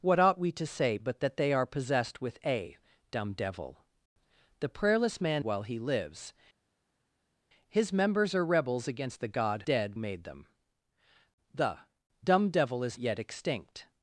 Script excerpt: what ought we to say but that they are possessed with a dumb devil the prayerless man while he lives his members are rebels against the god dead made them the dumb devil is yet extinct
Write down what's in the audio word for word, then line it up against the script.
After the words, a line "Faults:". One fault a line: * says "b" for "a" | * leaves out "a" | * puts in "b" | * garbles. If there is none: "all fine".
what ought we to say but that they are possessed with a dumb devil the prayerless man while he lives his members are rebels against the god dead made them the dumb devil is yet extinct
Faults:
all fine